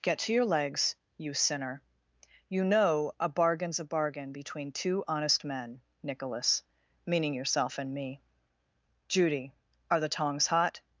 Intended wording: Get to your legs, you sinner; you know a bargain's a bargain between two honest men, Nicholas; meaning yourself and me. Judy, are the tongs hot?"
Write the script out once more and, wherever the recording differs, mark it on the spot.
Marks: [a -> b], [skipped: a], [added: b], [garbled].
Get to your legs, you sinner; you know a bargain's a bargain between two honest men, Nicholas; meaning yourself and me. Judy, are the tongs hot?"